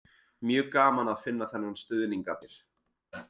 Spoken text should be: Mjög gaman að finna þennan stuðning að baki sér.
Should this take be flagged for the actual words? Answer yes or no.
yes